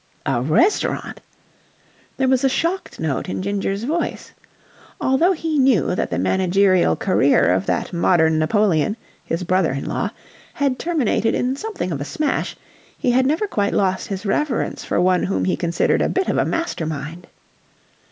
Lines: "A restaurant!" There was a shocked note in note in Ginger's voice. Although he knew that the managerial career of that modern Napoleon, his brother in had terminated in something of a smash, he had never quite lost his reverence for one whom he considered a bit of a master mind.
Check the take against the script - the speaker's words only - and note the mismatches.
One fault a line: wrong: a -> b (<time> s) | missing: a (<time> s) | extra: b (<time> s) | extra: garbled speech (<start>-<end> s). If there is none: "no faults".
missing: note in (3.4 s)
extra: law (9.8 s)